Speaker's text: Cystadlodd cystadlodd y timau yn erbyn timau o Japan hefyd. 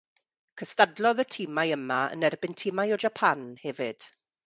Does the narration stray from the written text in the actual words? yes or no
yes